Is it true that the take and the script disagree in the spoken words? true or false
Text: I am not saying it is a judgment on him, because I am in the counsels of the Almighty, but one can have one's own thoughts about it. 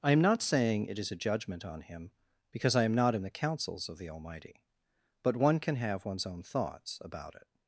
true